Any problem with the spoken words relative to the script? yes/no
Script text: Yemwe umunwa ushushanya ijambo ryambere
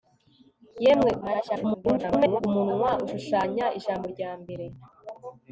yes